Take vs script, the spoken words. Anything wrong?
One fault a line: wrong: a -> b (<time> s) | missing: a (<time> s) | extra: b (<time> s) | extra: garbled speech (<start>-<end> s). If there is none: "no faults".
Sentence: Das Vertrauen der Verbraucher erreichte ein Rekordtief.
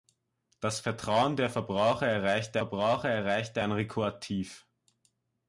extra: Verbraucher erreichte (2.5 s)